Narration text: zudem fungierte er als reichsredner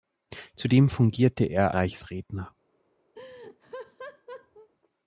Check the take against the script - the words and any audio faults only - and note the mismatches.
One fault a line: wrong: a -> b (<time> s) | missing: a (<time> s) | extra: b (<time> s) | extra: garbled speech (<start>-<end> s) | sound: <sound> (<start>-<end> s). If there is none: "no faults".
missing: als (1.8 s)
sound: laugh (3.1-4.7 s)